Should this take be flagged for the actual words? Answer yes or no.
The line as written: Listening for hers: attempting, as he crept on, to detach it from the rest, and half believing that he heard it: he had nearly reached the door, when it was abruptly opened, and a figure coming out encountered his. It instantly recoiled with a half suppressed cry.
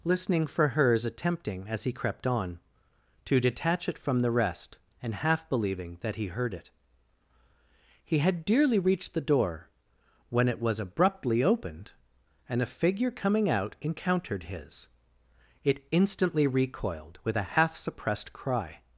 yes